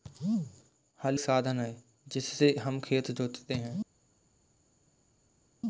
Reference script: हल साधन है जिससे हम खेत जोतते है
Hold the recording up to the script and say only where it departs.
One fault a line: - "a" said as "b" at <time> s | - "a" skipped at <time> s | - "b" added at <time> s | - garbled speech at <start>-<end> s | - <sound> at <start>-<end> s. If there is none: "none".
none